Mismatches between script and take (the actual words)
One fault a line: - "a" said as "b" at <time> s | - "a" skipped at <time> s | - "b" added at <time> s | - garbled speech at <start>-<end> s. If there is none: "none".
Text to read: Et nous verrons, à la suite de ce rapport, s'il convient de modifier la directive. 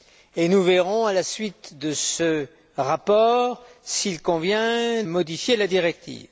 - "de" skipped at 5.0 s